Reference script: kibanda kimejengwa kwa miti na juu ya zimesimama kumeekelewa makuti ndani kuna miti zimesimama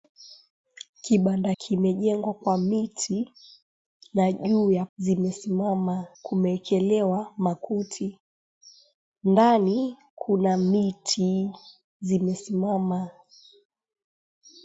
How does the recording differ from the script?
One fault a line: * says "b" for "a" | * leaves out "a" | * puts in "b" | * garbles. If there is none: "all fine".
all fine